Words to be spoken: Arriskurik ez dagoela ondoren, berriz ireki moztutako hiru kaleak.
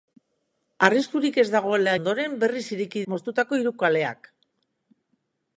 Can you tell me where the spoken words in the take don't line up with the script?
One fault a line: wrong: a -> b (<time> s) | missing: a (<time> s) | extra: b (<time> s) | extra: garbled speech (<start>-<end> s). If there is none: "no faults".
no faults